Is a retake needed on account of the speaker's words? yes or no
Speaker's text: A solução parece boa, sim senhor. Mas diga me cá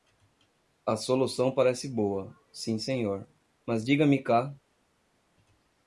no